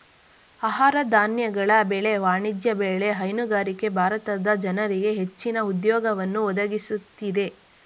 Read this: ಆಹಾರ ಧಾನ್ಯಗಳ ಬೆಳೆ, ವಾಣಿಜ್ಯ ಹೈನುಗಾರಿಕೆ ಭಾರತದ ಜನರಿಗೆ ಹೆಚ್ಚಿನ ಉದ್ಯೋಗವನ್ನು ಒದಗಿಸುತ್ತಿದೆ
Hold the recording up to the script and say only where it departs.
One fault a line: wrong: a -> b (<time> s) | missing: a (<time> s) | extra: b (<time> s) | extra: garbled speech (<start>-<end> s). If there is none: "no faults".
extra: ಬೆಳೆ (2.8 s)